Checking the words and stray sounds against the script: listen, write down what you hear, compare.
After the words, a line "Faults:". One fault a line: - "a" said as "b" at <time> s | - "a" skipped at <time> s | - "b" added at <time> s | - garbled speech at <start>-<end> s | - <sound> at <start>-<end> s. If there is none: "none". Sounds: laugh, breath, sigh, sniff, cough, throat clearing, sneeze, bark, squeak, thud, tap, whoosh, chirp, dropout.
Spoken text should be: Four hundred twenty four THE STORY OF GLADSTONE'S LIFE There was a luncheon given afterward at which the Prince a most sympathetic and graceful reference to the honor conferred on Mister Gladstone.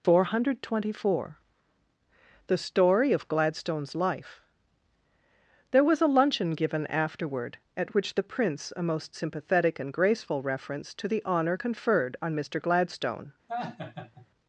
Four hundred twenty four THE STORY OF GLADSTONE'S LIFE There was a luncheon given afterward at which the Prince a most sympathetic and graceful reference to the honor conferred on Mister Gladstone.
Faults:
- laugh at 13.5-14.3 s